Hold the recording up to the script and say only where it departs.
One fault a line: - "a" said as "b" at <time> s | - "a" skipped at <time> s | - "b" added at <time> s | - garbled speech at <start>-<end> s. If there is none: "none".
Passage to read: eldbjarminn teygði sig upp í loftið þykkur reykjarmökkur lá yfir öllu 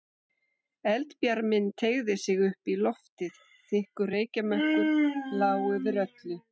none